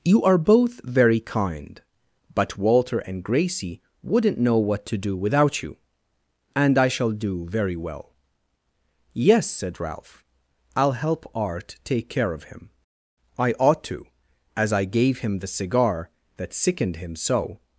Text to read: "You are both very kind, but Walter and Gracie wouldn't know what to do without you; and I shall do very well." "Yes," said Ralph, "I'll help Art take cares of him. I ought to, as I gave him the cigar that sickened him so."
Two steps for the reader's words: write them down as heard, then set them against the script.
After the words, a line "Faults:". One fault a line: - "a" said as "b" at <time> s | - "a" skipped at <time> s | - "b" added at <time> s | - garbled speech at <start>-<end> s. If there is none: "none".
"You are both very kind, but Walter and Gracie wouldn't know what to do without you; and I shall do very well." "Yes," said Ralph, "I'll help Art take care of him. I ought to, as I gave him the cigar that sickened him so."
Faults:
- "cares" said as "care" at 12.1 s